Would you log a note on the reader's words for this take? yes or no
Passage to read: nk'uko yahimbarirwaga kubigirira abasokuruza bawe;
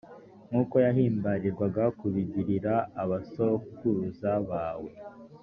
no